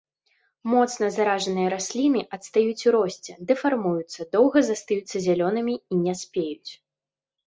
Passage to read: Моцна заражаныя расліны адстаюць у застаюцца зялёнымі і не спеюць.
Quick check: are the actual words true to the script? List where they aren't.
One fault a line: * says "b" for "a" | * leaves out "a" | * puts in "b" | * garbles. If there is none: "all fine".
* puts in "росце дэфармуюцца доўга"